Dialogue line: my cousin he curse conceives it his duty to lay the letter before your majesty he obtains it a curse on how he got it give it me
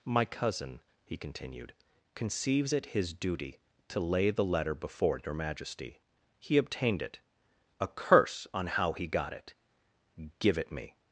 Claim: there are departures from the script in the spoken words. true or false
true